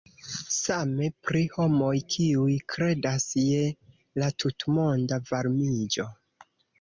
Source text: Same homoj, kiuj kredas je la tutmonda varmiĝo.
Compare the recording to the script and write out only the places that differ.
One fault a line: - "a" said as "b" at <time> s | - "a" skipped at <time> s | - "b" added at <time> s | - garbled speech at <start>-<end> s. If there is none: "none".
- "pri" added at 1.3 s